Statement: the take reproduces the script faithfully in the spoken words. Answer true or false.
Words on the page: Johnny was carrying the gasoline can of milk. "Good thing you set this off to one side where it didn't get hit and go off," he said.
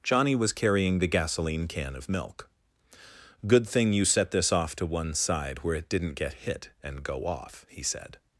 true